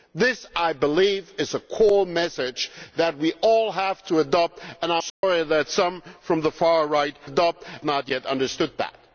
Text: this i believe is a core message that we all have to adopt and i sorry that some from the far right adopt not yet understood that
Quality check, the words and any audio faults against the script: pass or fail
fail